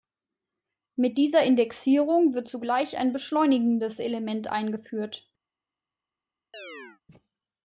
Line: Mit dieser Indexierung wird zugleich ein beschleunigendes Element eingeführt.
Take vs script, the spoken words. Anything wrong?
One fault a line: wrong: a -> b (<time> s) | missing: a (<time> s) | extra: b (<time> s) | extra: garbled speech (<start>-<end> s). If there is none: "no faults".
no faults